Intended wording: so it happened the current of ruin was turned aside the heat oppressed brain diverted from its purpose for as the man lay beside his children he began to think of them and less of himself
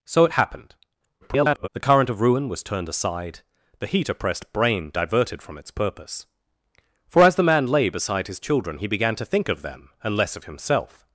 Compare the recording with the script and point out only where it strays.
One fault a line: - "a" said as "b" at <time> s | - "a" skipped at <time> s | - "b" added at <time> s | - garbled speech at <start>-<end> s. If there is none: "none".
- garbled speech at 1.2-1.7 s